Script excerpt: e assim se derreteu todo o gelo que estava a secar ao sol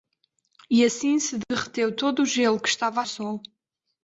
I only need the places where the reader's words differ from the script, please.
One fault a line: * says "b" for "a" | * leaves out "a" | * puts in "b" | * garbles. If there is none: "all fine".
* leaves out "secar ao"